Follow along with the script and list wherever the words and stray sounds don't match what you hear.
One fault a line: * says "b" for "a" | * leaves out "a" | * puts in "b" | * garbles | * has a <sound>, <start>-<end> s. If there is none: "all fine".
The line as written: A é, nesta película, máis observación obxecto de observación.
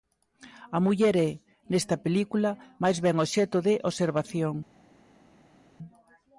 * puts in "muller"
* says "ben" for "observación"